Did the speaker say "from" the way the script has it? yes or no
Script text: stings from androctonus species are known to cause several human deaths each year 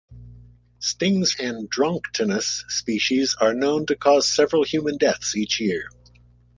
no